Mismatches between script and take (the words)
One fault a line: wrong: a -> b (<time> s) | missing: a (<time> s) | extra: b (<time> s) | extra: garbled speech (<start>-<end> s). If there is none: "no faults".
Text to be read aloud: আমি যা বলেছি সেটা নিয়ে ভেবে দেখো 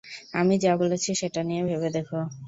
no faults